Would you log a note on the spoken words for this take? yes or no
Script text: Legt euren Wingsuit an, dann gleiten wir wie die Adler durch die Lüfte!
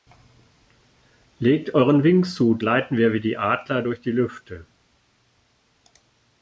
yes